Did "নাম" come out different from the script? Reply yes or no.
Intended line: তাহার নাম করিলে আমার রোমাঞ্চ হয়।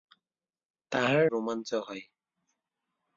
yes